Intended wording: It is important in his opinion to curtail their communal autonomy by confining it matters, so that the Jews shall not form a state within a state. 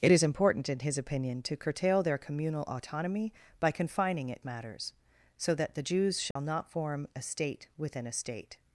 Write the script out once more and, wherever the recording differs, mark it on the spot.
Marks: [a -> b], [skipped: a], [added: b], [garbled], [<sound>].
It is important in his opinion to curtail their communal autonomy by confining it matters, so that the Jews shall [dropout] not form a state within a state.